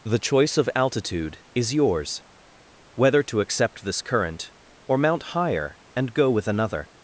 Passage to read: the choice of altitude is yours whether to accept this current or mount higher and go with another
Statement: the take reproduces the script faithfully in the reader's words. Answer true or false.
true